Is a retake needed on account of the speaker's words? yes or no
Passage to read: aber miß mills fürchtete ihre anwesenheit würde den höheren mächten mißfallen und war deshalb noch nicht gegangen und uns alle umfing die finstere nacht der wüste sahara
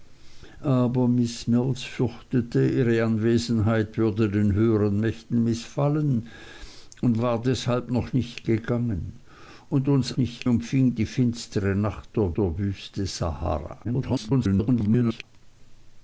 yes